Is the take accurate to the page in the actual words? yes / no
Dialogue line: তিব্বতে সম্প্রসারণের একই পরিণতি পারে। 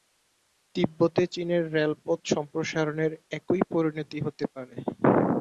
no